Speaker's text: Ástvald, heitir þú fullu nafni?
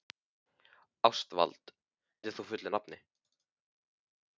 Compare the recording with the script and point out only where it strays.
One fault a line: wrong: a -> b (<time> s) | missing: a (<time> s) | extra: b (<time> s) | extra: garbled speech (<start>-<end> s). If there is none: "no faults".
no faults